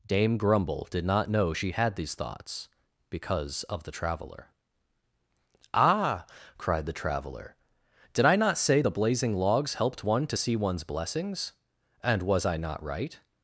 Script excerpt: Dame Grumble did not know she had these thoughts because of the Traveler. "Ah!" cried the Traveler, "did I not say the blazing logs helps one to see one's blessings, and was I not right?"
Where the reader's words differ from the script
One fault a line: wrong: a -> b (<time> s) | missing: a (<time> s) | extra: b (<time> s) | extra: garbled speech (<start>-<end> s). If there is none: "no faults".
wrong: helps -> helped (9.8 s)